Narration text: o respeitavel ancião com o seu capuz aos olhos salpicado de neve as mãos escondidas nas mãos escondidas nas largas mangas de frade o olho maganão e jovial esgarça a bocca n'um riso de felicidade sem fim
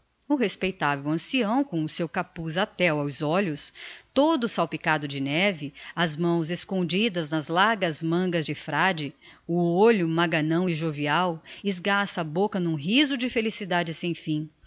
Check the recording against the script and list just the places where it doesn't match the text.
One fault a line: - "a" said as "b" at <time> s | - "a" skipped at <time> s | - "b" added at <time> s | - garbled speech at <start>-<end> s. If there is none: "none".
- "até" added at 2.6 s
- "todo" added at 4.1 s
- "mãos escondidas nas" skipped at 7.5 s